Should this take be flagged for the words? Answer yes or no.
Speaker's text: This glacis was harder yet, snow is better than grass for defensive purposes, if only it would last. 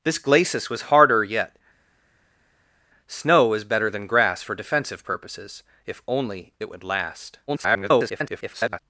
yes